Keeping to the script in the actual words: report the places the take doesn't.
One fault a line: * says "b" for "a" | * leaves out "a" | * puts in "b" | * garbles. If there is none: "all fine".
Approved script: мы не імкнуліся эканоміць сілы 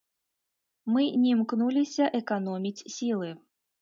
all fine